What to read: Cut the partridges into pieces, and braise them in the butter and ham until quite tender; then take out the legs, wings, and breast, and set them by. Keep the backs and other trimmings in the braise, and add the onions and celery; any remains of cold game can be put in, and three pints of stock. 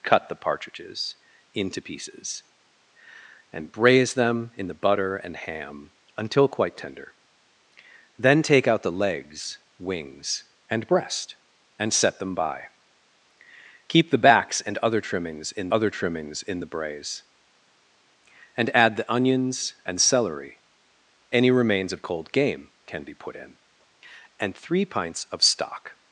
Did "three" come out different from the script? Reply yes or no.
no